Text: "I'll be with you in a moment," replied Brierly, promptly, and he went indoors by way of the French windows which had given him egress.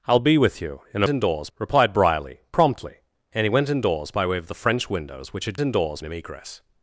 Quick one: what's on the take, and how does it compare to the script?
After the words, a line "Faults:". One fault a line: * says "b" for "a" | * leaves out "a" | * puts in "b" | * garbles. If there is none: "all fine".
"I'll be with you in a indoors," replied Brierly, promptly, and he went indoors by way of the French windows which had indoors him egress.
Faults:
* says "indoors" for "moment"
* says "indoors" for "given"